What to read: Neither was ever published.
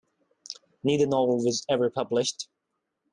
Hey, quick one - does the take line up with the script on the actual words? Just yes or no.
no